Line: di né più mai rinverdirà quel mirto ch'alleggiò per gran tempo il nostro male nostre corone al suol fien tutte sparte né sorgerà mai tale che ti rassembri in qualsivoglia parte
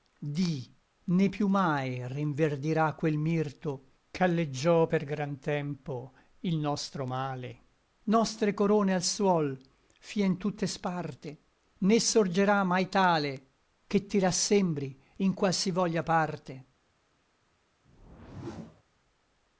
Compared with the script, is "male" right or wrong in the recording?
right